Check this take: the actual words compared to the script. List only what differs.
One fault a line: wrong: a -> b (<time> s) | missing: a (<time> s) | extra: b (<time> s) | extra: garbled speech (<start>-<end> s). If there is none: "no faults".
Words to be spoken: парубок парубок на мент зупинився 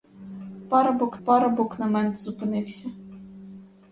no faults